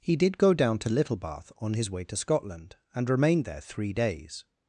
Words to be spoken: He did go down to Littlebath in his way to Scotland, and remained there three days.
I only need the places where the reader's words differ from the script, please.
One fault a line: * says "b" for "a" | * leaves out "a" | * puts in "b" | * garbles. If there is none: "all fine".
* says "on" for "in"